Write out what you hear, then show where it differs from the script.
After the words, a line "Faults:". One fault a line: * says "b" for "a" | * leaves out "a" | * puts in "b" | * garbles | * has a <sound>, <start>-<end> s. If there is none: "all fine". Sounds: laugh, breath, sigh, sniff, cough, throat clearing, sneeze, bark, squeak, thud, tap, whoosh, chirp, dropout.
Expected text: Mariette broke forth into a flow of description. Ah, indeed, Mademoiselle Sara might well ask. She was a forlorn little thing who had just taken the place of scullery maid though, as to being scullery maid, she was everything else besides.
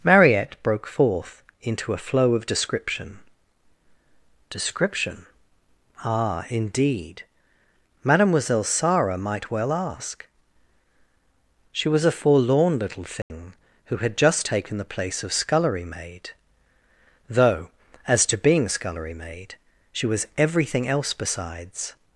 Mariette broke forth into a flow of description description. Ah, indeed, Mademoiselle Sara might well ask. She was a forlorn little thing who had just taken the place of scullery maid though, as to being scullery maid, she was everything else besides.
Faults:
* puts in "description"
* has a dropout, 13.2-13.3 s